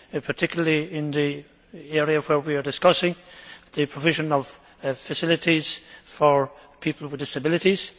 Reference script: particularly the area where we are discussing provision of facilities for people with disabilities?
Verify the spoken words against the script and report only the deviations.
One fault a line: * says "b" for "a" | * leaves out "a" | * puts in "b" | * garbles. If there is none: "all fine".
* puts in "in"
* puts in "the"